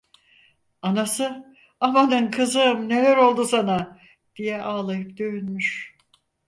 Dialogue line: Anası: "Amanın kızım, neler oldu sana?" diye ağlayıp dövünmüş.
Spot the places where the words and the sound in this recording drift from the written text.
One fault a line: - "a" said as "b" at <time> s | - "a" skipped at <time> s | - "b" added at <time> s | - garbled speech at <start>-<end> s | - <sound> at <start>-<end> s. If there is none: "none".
none